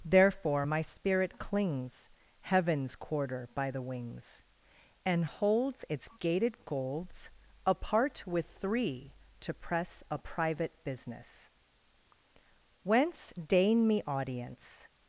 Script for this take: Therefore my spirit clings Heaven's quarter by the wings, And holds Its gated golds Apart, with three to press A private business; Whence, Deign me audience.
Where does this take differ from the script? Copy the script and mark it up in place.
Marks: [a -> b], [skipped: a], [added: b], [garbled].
Therefore my spirit clings Heaven's quarter by the wings, And holds Its gated golds Apart, with three to press A private business; Whence, Deign me audience.